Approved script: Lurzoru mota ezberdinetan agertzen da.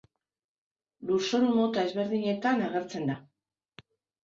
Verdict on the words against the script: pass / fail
pass